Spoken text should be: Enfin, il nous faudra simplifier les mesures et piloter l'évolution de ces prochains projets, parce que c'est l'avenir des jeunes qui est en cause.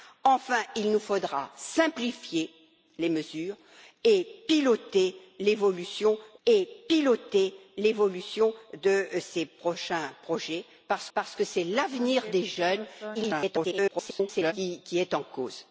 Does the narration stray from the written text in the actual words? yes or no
yes